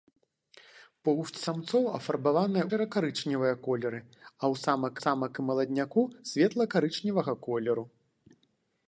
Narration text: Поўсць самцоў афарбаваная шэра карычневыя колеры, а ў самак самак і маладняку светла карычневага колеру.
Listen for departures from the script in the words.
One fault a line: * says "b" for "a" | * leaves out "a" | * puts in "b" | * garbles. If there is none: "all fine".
all fine